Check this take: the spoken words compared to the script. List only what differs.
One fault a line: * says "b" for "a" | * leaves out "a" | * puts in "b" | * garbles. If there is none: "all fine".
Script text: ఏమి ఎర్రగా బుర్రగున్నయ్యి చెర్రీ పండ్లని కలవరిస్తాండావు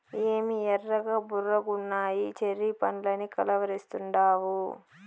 all fine